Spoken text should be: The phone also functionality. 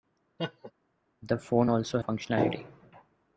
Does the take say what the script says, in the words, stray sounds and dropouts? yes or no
no